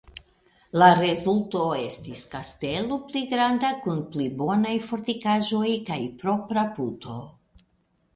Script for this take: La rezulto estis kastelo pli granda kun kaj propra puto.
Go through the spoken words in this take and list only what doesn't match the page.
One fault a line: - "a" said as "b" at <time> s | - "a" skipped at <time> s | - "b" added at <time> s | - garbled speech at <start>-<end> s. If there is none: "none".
- "pli bonaj fortikaĵoj" added at 4.1 s